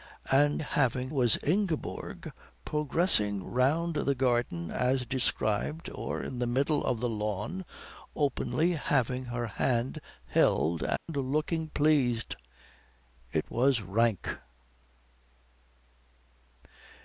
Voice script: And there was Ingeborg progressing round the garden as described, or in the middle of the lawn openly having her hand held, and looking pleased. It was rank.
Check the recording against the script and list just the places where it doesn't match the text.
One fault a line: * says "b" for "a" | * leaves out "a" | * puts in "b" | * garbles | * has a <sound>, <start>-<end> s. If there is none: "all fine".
* says "having" for "there"
* has a dropout, 11.0-11.1 s